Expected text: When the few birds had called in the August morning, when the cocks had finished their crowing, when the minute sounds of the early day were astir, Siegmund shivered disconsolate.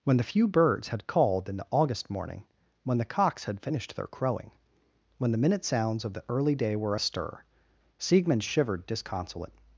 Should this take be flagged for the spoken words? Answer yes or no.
no